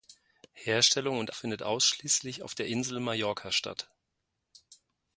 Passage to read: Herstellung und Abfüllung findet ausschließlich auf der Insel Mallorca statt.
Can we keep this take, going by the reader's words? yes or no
no